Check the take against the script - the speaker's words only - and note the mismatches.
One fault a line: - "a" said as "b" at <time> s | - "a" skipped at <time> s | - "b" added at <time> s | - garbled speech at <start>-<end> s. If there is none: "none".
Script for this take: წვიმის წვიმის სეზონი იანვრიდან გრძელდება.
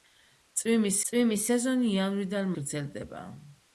none